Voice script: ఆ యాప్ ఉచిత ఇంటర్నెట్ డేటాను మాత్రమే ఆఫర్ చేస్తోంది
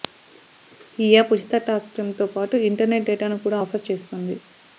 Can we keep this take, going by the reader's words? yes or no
no